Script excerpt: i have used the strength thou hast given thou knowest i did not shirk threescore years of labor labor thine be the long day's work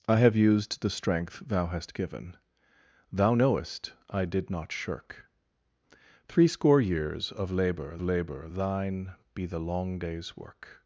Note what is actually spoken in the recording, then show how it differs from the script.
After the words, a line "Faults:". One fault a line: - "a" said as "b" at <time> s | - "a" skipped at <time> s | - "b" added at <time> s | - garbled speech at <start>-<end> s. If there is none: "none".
i have used the strength thou hast given thou knowest i did not shirk threescore years of labor labor thine be the long day's work
Faults:
none